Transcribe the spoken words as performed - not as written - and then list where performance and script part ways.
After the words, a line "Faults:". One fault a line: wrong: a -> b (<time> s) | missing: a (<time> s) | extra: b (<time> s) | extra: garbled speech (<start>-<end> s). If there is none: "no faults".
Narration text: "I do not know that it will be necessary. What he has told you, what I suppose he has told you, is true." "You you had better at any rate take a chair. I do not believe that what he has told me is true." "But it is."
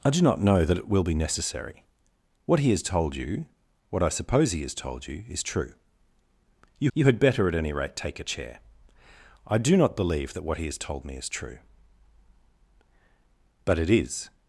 "I do not know that it will be necessary. What he has told you, what I suppose he has told you, is true." "You you had better at any rate take a chair. I do not believe that what he has told me is true." "But it is."
Faults:
no faults